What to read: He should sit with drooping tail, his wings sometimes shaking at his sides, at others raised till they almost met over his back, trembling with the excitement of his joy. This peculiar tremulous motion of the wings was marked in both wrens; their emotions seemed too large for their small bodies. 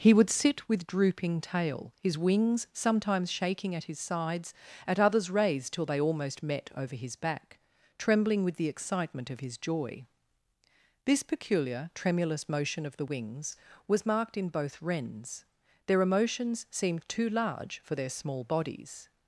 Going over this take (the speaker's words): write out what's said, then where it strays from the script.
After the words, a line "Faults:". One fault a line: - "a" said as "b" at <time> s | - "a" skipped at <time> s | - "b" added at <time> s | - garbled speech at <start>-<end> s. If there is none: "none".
He would sit with drooping tail, his wings sometimes shaking at his sides, at others raised till they almost met over his back, trembling with the excitement of his joy. This peculiar tremulous motion of the wings was marked in both wrens; their emotions seemed too large for their small bodies.
Faults:
- "should" said as "would" at 0.1 s